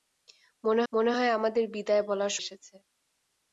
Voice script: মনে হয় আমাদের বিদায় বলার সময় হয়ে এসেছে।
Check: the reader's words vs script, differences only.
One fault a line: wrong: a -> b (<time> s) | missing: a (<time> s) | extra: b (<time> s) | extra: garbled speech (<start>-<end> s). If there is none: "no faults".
extra: মনে (0.9 s)
missing: সময় হয়ে (2.3 s)